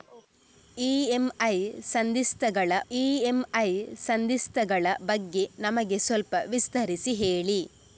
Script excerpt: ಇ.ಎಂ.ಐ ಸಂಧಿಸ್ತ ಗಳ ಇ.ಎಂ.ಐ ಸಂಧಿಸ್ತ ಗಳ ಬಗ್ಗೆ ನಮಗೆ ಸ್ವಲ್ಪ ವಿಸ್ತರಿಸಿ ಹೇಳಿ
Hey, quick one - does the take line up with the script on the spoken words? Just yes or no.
yes